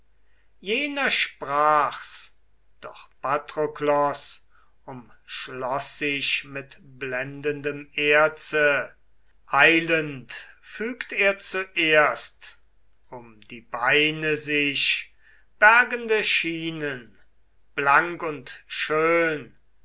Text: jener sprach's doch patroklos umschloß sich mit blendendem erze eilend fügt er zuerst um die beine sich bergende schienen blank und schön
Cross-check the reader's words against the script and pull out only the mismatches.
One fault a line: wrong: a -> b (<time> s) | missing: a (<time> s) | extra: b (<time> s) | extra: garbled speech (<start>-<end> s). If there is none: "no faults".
no faults